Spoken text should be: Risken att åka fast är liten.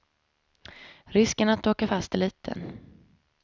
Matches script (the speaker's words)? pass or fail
pass